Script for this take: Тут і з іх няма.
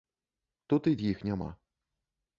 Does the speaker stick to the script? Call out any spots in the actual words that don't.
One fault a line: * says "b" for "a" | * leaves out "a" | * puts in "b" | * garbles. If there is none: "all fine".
all fine